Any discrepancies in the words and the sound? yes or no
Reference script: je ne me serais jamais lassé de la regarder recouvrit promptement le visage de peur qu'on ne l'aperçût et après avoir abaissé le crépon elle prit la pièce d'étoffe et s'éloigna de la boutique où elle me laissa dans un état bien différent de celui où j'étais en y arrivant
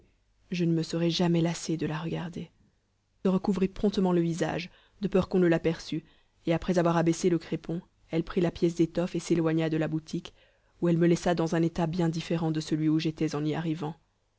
no